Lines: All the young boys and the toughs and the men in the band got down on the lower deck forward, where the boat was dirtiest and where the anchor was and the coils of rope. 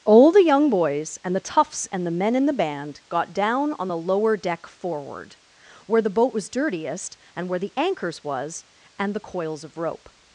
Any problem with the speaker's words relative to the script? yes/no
yes